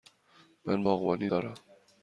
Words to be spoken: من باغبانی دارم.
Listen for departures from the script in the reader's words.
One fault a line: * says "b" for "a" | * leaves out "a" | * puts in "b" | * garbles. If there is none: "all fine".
all fine